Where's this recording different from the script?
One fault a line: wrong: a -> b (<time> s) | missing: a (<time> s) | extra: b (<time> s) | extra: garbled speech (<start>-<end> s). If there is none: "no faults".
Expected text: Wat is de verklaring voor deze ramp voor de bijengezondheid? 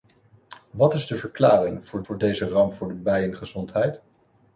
extra: voor (2.0 s)